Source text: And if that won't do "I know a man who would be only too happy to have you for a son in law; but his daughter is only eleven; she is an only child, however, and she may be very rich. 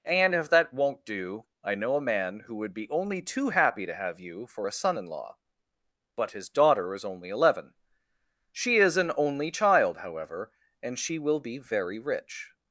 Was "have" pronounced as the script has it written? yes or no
yes